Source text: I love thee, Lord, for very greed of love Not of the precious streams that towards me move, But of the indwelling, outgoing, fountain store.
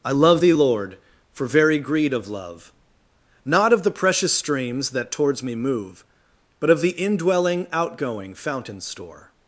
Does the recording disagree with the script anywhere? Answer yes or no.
no